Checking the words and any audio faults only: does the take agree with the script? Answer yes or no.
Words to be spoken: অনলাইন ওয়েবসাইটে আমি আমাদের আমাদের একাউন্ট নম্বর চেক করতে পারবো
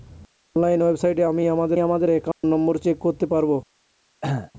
no